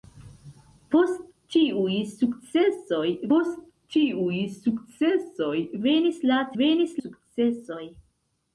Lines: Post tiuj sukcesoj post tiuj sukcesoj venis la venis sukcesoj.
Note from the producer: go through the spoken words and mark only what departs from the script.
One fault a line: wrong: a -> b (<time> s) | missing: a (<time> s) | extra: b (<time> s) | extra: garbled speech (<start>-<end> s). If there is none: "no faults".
no faults